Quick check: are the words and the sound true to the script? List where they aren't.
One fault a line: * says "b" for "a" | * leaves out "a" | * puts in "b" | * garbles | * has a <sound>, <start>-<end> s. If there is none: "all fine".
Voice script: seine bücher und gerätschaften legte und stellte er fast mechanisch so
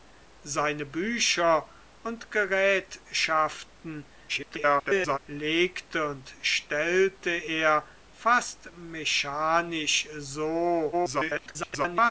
* garbles
* garbles